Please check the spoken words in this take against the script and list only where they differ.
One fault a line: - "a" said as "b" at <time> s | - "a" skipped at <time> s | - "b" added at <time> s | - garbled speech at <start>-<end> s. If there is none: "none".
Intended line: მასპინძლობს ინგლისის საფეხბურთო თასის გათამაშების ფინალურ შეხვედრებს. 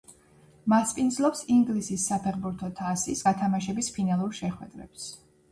none